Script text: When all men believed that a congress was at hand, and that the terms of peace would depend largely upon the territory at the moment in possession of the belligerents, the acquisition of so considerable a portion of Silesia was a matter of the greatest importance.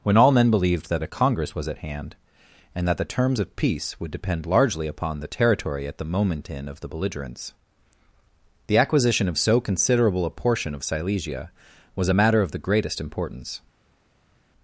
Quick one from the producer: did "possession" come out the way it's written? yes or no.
no